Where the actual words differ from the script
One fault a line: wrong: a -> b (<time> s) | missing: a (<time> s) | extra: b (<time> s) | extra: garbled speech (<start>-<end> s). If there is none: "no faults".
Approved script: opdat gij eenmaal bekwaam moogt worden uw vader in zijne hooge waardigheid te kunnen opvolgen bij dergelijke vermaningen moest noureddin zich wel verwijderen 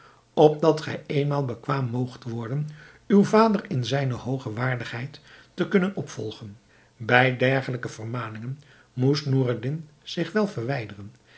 no faults